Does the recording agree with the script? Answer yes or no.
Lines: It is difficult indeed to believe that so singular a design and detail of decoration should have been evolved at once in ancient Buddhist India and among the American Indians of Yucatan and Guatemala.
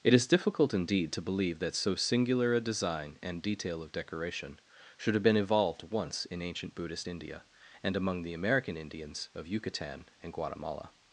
no